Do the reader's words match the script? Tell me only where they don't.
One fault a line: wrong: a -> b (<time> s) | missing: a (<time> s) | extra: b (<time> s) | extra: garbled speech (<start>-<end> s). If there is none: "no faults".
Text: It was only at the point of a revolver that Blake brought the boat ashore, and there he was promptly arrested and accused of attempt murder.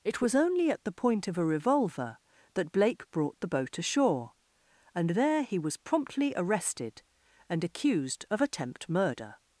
no faults